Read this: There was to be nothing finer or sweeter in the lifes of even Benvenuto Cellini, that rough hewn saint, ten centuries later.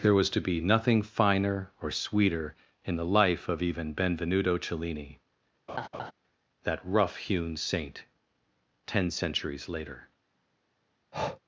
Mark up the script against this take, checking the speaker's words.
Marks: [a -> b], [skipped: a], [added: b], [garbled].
There was to be nothing finer or sweeter in the [lifes -> life] of even Benvenuto Cellini, that rough hewn saint, ten centuries later.